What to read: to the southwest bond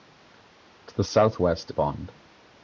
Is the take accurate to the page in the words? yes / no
yes